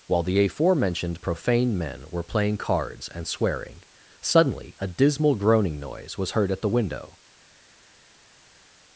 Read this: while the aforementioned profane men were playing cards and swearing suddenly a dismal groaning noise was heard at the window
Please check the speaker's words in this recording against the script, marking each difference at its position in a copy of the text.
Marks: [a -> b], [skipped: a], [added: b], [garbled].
while the aforementioned profane men were playing cards and swearing suddenly a dismal groaning noise was heard at the window